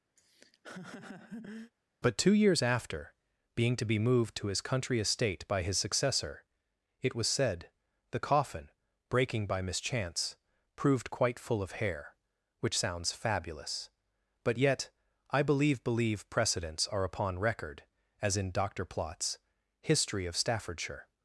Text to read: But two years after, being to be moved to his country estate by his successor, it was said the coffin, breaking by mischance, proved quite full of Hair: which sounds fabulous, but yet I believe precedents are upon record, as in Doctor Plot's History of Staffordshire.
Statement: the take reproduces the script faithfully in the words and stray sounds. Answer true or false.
false